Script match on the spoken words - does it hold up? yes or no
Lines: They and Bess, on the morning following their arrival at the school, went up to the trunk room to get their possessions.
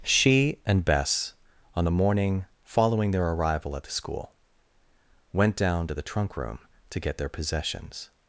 no